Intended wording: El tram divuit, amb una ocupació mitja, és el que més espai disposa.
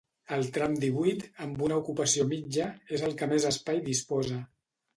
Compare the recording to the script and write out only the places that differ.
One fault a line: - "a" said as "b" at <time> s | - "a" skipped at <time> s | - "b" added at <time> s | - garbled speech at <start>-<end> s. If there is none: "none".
none